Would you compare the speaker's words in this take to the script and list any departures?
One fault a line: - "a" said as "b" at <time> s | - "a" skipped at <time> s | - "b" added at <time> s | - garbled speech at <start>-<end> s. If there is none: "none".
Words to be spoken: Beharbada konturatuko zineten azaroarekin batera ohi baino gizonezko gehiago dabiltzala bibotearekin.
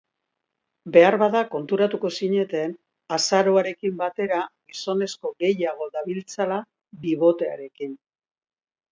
- "ohi baino" skipped at 4.4 s